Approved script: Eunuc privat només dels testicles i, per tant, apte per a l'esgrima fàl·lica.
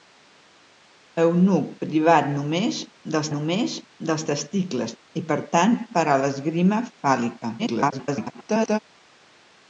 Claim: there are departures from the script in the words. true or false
true